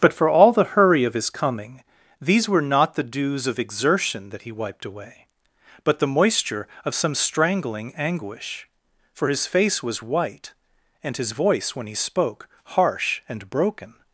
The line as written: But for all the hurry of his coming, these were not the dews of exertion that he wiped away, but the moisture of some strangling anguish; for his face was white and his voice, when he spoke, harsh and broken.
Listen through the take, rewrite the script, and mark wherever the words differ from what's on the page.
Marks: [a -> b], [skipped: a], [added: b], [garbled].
But for all the hurry of his coming, these were not the dews of exertion that he wiped away, but the moisture of some strangling anguish; for his face was white and his voice, when he spoke, harsh and broken.